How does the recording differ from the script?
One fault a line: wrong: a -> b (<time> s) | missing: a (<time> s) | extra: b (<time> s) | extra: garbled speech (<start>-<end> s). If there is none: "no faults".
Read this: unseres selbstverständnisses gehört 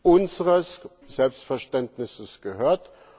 no faults